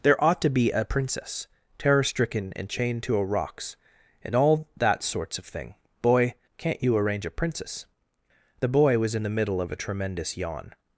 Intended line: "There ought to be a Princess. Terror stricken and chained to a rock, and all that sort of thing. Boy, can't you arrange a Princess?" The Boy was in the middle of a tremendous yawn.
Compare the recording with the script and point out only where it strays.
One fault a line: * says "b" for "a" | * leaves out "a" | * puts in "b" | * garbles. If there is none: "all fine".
* says "rocks" for "rock"
* says "sorts" for "sort"